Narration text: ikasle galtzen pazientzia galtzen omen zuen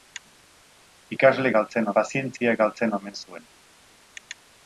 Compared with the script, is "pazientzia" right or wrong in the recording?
right